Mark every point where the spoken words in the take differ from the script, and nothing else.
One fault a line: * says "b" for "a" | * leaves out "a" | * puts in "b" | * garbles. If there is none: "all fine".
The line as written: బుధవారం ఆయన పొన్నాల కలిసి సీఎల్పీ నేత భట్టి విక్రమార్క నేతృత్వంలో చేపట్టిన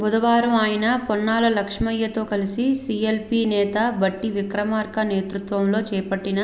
* puts in "లక్ష్మయ్యతో"